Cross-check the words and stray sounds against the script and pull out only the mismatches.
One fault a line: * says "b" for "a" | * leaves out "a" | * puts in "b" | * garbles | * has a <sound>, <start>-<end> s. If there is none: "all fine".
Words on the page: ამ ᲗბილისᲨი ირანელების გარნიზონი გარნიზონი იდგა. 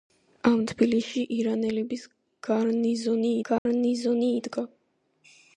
* has a dropout, 3.6-3.7 s